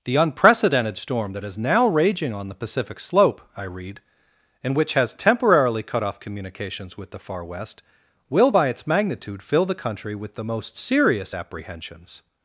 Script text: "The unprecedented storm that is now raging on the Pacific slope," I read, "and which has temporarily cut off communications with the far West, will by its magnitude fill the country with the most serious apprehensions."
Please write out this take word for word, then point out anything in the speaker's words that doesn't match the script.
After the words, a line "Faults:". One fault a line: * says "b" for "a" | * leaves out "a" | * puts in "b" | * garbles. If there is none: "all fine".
"The unprecedented storm that is now raging on the Pacific slope," I read, "and which has temporarily cut off communications with the far West, will by its magnitude fill the country with the most serious apprehensions."
Faults:
all fine